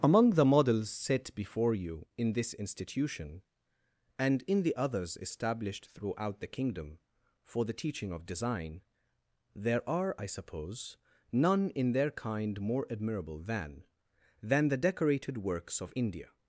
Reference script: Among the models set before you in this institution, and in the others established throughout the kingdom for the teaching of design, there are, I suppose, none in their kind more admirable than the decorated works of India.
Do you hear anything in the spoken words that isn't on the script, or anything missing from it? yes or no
yes